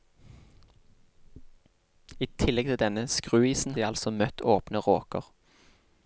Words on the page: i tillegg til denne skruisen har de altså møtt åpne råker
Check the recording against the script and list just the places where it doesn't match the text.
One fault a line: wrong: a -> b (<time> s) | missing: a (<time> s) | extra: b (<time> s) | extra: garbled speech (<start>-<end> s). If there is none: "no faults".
missing: har (3.8 s)